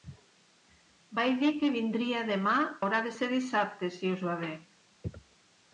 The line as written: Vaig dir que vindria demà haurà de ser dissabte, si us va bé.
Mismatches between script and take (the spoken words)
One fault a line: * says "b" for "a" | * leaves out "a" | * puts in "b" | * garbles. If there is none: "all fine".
all fine